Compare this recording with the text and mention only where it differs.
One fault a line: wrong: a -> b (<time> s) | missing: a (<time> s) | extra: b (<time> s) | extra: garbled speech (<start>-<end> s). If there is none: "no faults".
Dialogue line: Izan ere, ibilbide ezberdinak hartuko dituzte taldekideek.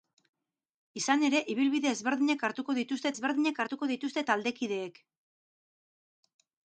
extra: ezberdinak hartuko dituzte (3.1 s)